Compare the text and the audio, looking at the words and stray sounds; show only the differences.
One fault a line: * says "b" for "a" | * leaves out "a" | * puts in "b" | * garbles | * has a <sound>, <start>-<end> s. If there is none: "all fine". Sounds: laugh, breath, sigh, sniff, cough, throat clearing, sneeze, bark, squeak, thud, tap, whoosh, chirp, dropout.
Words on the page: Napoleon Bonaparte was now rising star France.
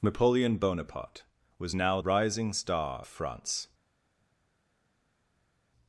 all fine